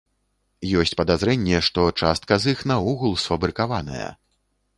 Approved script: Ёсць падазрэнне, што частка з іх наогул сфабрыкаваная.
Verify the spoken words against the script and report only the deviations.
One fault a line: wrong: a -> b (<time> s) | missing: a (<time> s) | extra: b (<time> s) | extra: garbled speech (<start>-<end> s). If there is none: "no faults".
no faults